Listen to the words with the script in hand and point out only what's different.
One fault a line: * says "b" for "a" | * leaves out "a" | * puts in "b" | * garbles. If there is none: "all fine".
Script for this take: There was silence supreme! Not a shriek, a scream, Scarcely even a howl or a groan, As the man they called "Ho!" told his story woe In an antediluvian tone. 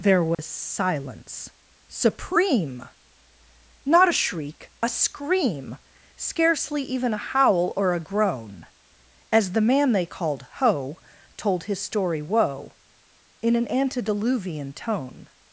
all fine